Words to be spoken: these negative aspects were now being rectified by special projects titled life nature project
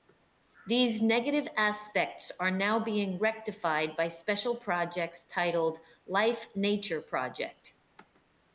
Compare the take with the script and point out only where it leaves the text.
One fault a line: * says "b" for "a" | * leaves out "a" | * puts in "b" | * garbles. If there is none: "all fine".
* says "are" for "were"